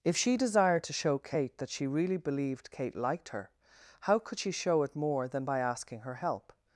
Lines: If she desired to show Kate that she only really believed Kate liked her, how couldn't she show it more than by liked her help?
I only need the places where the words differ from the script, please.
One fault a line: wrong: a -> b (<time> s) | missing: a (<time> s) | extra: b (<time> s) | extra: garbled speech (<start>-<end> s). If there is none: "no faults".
missing: only (1.9 s)
wrong: couldn't -> could (4.2 s)
wrong: liked -> asking (5.6 s)